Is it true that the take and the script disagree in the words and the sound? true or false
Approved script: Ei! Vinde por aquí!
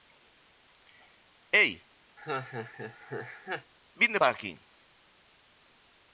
true